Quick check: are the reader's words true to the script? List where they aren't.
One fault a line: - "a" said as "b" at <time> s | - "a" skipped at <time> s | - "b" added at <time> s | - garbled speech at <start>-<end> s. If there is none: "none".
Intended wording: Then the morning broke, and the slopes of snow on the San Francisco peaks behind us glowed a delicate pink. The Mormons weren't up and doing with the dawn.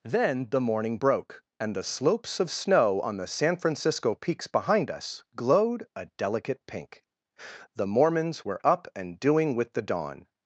- "weren't" said as "were" at 8.4 s